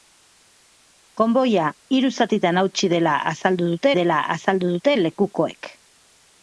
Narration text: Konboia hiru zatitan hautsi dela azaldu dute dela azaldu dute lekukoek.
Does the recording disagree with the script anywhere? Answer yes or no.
no